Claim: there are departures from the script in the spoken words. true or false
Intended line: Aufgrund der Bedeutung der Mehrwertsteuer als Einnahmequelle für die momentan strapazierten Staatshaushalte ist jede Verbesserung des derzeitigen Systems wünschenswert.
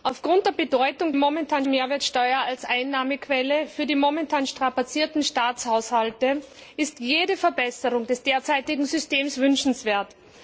true